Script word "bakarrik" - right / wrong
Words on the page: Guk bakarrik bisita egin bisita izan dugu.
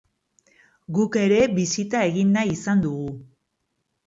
wrong